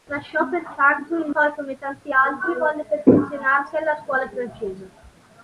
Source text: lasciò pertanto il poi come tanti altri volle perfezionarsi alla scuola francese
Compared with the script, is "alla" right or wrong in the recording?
right